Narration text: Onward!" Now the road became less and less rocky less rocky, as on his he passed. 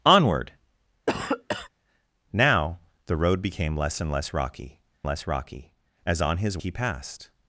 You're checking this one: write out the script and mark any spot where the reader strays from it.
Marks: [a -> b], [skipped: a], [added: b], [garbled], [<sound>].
Onward!" [cough] Now the road became less and less rocky less rocky, as on his he passed.